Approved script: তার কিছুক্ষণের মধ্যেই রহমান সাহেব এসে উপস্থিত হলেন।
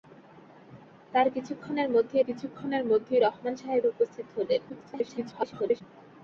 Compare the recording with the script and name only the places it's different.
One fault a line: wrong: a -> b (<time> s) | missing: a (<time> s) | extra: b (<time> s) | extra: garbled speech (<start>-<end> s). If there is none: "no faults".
extra: কিছুক্ষণের মধ্যেই (2.2 s)
missing: এসে (3.8 s)
extra: garbled speech (4.7-5.8 s)